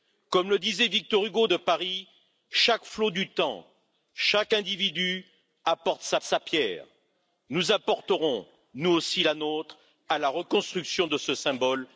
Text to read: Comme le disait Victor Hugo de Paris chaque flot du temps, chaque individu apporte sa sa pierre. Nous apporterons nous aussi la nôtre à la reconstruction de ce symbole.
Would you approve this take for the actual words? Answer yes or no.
yes